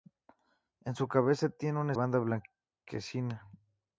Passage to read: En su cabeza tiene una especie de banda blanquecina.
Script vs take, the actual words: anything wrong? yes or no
yes